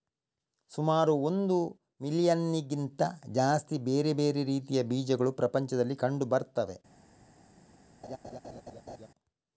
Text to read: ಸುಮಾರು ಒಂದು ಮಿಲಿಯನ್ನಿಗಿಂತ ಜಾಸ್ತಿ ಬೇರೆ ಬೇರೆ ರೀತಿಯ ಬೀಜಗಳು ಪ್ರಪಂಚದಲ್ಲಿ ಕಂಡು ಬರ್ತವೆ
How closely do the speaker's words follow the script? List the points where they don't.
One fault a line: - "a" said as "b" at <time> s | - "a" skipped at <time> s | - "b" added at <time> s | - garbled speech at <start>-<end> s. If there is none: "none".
none